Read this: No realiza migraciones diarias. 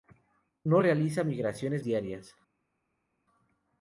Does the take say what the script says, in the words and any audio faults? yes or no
yes